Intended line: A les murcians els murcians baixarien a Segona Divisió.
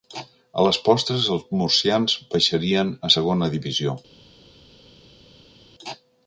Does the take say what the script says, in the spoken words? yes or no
no